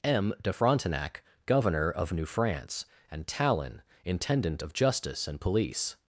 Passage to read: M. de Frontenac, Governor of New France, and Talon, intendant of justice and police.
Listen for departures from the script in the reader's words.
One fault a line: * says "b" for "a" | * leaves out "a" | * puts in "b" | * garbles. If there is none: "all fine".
all fine